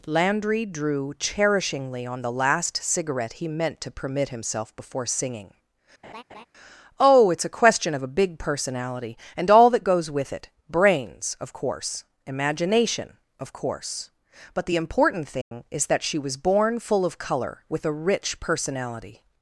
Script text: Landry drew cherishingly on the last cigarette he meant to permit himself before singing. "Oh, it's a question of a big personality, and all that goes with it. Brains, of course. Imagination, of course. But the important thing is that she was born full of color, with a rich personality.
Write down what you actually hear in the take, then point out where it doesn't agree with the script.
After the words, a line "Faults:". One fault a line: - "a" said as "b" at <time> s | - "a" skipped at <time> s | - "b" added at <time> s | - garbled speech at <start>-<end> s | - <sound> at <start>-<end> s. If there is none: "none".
Landry drew cherishingly on the last cigarette he meant to permit himself before singing. "Oh, it's a question of a big personality, and all that goes with it. Brains, of course. Imagination, of course. But the important thing is that she was born full of color, with a rich personality.
Faults:
- laugh at 6.0-6.5 s
- dropout at 15.4-15.5 s